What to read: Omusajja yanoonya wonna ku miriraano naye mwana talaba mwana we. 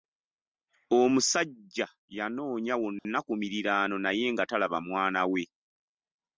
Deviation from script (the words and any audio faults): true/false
true